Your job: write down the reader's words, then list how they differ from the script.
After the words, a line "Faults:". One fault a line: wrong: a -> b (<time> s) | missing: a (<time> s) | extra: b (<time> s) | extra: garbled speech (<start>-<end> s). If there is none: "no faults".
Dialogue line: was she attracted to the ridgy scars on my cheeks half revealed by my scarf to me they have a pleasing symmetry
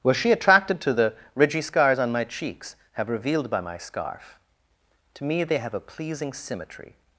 was she attracted to the ridgy scars on my cheeks have revealed by my scarf to me they have a pleasing symmetry
Faults:
wrong: half -> have (2.9 s)